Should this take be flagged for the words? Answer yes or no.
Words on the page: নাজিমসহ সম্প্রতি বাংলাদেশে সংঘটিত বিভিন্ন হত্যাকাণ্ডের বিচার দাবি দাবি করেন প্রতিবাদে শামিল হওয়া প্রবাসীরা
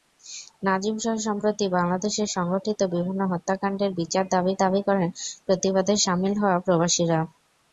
no